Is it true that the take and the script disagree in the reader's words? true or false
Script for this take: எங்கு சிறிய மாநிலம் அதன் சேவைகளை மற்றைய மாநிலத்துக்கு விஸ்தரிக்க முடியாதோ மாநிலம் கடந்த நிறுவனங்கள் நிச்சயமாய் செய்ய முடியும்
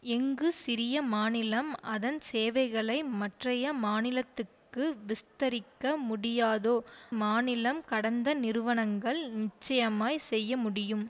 false